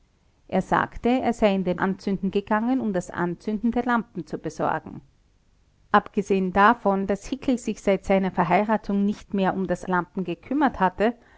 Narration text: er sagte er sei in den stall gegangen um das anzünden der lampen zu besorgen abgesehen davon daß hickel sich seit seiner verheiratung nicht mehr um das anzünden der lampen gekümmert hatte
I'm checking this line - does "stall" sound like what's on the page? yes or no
no